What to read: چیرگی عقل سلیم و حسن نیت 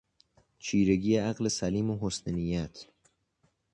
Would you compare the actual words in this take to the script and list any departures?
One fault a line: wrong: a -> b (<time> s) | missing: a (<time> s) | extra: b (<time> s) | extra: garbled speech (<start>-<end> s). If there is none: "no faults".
no faults